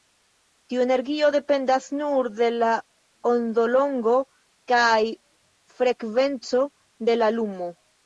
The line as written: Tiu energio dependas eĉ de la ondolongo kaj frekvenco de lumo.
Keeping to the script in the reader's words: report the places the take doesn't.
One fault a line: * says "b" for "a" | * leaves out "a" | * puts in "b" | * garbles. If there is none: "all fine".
* says "nur" for "eĉ"
* puts in "la"